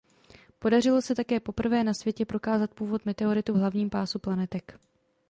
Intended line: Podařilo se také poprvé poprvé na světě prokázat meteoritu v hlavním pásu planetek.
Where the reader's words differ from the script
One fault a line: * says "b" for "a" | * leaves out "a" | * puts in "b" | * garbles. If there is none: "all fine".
* leaves out "poprvé"
* puts in "původ"